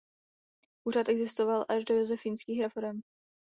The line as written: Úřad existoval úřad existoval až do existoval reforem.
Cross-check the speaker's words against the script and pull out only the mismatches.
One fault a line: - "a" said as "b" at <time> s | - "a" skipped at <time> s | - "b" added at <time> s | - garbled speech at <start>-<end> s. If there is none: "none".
- "úřad existoval" skipped at 1.6 s
- "existoval" said as "josefínských" at 1.9 s